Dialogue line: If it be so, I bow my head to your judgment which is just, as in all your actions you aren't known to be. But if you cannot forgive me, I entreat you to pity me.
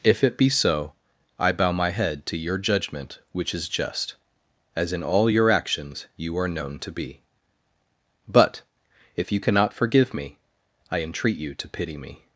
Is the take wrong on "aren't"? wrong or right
wrong